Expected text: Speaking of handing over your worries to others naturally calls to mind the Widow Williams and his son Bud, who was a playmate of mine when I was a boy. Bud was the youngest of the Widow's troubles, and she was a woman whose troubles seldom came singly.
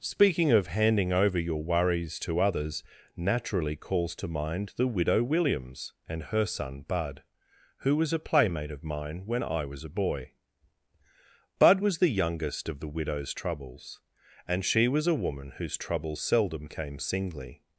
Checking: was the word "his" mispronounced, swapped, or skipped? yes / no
yes